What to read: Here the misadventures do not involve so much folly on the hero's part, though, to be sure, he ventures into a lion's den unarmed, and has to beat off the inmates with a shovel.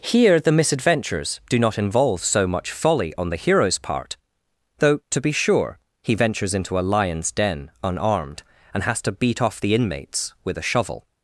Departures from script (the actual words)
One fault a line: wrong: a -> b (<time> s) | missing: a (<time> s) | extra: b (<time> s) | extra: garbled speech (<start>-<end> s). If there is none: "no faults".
no faults